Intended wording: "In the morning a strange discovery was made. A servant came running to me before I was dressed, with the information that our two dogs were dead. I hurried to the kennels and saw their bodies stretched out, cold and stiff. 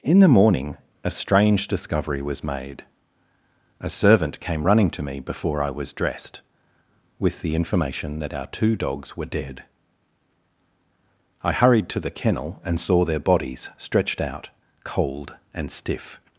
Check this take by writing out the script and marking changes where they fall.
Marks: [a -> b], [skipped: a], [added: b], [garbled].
"In the morning a strange discovery was made. A servant came running to me before I was dressed, with the information that our two dogs were dead. I hurried to the [kennels -> kennel] and saw their bodies stretched out, cold and stiff.